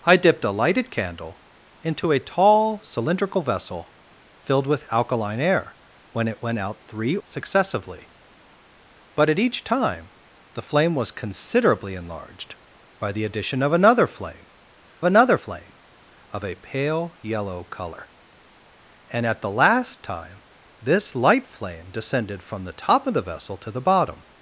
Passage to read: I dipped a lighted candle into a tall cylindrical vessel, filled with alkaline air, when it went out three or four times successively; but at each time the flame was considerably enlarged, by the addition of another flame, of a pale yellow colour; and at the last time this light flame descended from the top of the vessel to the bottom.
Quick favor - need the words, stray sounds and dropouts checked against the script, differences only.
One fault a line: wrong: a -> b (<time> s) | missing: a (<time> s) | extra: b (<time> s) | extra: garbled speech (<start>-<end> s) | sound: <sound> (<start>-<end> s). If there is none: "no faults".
missing: or four times (7.2 s)
extra: another flame (15.0 s)